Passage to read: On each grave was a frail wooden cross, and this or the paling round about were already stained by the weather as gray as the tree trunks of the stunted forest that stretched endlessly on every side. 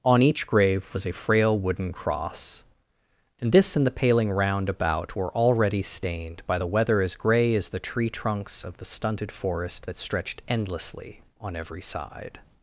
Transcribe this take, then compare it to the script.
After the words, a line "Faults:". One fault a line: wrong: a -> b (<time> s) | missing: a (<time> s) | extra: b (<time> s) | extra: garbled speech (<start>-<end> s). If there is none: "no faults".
On each grave was a frail wooden cross, and this and the paling round about were already stained by the weather as gray as the tree trunks of the stunted forest that stretched endlessly on every side.
Faults:
wrong: or -> and (3.8 s)